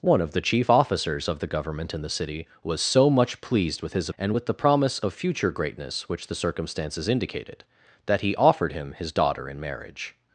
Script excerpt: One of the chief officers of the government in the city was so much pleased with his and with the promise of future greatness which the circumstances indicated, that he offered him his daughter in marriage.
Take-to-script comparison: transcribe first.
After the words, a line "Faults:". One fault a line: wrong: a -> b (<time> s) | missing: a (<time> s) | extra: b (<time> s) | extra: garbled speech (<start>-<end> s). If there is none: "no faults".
One of the chief officers of the government in the city was so much pleased with his and with the promise of future greatness which the circumstances indicated, that he offered him his daughter in marriage.
Faults:
no faults